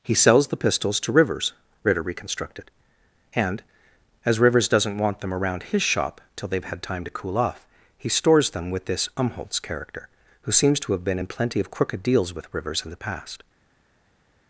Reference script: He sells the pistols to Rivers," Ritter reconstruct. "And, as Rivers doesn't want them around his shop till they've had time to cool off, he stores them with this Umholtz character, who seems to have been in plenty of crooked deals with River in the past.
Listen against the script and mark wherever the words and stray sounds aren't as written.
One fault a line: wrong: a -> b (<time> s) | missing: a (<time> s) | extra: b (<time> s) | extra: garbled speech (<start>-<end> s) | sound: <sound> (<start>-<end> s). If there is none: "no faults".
wrong: reconstruct -> reconstructed (2.0 s)
wrong: River -> Rivers (12.5 s)